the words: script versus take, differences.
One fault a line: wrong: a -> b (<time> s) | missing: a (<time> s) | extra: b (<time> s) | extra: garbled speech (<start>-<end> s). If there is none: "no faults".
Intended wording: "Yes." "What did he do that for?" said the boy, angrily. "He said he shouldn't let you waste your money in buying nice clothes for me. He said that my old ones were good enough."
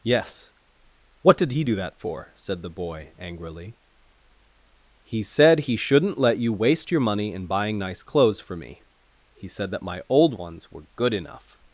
no faults